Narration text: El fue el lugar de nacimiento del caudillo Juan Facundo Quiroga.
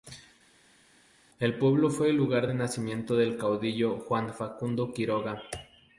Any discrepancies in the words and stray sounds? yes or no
yes